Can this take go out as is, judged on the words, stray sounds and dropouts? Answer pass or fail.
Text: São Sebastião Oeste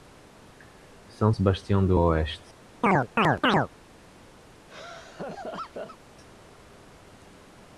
fail